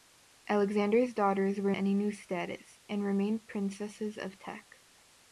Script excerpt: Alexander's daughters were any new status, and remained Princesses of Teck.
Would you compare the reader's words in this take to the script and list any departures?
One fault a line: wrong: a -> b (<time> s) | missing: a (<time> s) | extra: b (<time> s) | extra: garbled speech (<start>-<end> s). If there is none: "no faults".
no faults